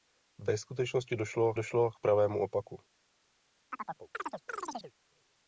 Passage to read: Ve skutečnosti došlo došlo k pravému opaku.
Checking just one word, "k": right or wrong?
right